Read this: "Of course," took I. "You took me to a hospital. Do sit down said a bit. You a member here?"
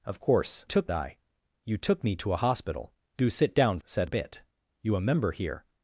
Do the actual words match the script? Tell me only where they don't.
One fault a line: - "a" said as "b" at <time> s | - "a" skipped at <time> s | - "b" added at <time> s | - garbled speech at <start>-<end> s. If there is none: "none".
none